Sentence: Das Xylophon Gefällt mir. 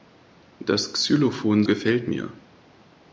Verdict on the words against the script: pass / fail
pass